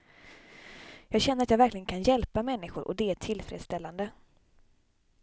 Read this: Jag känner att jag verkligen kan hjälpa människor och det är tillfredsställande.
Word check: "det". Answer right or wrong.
right